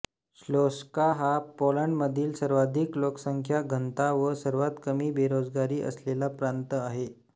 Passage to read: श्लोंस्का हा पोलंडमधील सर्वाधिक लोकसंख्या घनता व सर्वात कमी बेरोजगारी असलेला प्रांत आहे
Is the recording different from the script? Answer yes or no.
no